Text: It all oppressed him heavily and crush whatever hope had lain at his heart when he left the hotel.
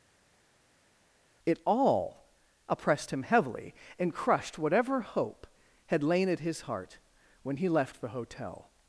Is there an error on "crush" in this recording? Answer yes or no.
yes